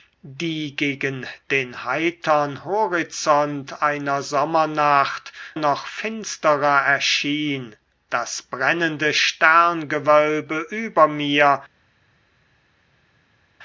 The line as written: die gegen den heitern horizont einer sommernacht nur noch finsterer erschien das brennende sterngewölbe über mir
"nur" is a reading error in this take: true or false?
true